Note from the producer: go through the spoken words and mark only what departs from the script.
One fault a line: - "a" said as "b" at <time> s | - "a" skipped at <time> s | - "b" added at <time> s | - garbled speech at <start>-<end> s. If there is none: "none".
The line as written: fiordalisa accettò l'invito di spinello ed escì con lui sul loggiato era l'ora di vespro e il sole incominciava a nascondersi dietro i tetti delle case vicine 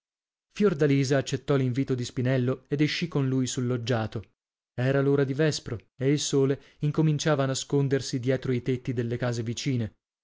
none